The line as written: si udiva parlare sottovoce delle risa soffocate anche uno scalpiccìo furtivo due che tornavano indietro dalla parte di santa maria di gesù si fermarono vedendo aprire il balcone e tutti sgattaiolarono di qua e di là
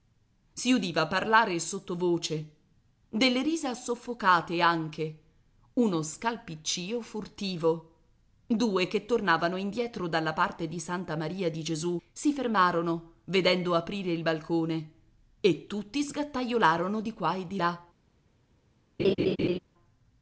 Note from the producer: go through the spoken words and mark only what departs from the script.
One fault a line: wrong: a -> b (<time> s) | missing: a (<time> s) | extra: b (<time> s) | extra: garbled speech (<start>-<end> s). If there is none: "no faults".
no faults